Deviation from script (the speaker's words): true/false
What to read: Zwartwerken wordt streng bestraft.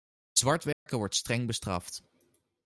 false